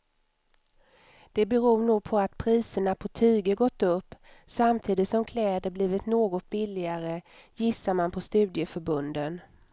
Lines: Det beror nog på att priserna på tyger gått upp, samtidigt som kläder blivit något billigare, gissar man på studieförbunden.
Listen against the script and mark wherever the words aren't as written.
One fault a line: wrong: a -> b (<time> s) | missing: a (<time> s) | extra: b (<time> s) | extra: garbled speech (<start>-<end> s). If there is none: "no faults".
no faults